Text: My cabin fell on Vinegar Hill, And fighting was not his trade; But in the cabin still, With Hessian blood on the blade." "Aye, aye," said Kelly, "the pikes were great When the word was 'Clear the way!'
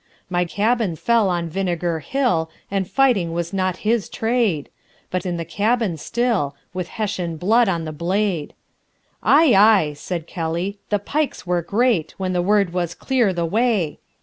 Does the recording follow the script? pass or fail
pass